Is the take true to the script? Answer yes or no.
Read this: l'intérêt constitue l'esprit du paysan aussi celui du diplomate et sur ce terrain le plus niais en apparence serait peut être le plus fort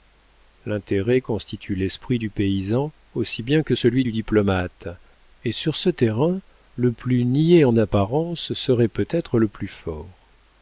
no